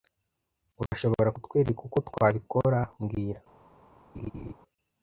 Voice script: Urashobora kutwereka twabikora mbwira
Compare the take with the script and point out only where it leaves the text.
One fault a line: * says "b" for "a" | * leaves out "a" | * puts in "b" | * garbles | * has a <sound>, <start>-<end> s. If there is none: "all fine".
* has a dropout, 0.9-0.9 s
* puts in "uko"
* has a laugh, 4.1-4.5 s